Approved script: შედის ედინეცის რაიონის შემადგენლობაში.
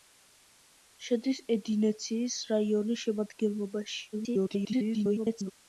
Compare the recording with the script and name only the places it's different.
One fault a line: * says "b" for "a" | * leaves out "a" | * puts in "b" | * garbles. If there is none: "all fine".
* garbles